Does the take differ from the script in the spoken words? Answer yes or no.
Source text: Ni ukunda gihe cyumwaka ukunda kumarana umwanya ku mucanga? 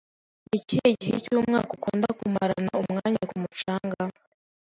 yes